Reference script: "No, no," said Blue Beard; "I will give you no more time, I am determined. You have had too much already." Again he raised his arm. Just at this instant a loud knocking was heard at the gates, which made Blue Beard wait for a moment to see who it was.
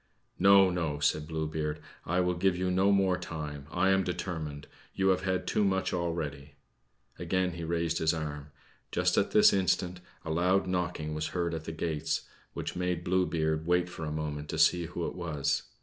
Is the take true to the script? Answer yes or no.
yes